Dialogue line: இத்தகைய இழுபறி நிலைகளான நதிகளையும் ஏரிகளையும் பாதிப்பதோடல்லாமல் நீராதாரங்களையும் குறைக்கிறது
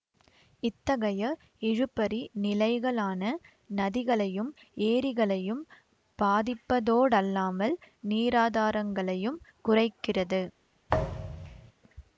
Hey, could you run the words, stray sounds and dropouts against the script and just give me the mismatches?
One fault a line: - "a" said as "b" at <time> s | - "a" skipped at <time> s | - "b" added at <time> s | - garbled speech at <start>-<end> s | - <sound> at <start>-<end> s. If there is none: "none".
- thud at 10.9-11.7 s